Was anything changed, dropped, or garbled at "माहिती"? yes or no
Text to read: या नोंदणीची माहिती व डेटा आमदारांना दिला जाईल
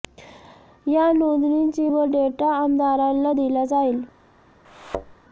yes